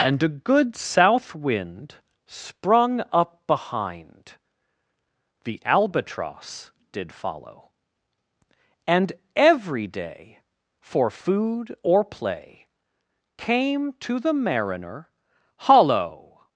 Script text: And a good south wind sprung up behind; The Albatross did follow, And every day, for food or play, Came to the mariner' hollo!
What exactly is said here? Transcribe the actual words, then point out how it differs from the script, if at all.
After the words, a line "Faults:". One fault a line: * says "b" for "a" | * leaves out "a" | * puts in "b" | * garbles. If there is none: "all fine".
And a good south wind sprung up behind; The Albatross did follow, And every day, for food or play, Came to the mariner' hollo!
Faults:
all fine